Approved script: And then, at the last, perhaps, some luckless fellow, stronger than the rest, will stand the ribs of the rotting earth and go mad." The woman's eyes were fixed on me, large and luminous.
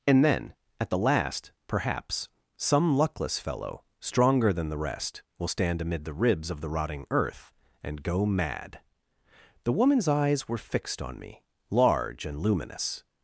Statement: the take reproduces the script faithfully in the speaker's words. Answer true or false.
false